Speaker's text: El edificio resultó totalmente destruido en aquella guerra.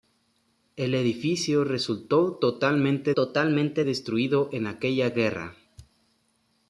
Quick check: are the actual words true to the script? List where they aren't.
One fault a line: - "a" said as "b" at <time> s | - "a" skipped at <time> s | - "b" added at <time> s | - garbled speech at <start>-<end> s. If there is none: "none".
- "totalmente" added at 3.2 s